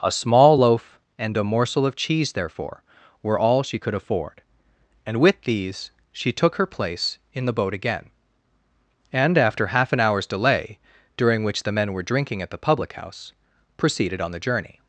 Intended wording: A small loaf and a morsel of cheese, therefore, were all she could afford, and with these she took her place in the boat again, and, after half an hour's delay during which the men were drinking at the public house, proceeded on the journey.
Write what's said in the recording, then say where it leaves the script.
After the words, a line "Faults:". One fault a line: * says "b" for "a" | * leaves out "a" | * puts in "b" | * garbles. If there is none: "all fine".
A small loaf and a morsel of cheese, therefore, were all she could afford, and with these she took her place in the boat again, and, after half an hour's delay during which the men were drinking at the public house, proceeded on the journey.
Faults:
all fine